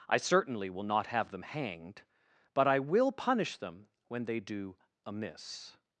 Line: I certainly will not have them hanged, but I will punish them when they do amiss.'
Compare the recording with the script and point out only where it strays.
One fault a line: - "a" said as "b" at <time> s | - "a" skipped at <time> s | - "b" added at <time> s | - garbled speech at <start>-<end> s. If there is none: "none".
none